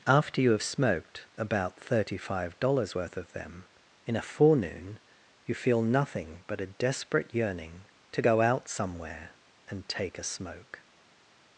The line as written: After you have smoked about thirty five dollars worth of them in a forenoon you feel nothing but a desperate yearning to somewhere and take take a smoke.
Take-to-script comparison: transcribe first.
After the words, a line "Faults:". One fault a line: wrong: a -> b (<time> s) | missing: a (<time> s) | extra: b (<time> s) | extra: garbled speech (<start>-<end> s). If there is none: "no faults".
After you have smoked about thirty five dollars worth of them in a forenoon you feel nothing but a desperate yearning to go out somewhere and take a smoke.
Faults:
extra: go out (8.2 s)
missing: take (10.2 s)